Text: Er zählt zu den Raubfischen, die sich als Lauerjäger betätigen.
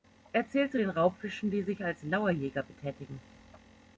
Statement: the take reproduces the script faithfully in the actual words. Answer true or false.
true